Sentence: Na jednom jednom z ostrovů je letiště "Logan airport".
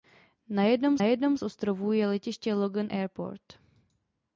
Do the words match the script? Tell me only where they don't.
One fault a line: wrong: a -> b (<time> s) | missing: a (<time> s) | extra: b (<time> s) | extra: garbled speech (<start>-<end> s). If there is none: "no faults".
no faults